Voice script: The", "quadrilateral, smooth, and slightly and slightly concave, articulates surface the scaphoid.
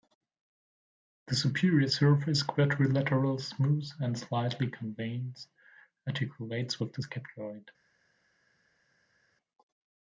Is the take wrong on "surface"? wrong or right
wrong